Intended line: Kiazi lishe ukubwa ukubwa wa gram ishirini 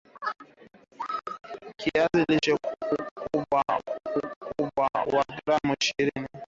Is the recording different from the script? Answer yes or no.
no